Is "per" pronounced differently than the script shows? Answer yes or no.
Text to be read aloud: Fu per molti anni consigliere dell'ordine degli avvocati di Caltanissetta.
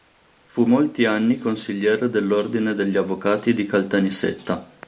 yes